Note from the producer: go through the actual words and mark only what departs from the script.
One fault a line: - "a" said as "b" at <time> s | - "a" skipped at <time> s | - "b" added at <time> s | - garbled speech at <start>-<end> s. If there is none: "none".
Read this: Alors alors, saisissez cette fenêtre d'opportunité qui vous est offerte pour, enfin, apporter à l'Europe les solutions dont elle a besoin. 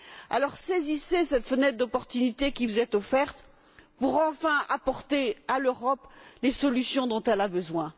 - "alors" skipped at 0.6 s